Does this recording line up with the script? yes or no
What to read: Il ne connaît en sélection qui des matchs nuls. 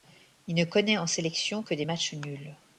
no